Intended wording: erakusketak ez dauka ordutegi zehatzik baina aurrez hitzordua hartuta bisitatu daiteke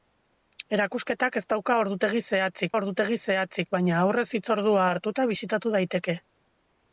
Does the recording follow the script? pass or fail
fail